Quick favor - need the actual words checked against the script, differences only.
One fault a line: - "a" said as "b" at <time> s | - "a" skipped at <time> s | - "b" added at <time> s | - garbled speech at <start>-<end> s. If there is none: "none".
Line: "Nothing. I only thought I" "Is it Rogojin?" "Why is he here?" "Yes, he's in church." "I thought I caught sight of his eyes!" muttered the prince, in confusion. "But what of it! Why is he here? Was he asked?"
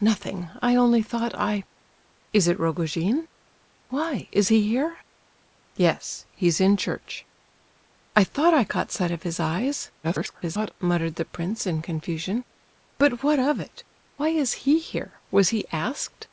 - garbled speech at 10.0-10.7 s